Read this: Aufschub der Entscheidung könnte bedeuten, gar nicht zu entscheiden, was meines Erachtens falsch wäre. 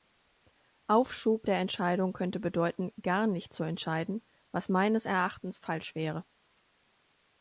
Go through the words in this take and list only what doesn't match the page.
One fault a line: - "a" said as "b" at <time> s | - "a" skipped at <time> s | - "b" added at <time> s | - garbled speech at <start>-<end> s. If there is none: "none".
none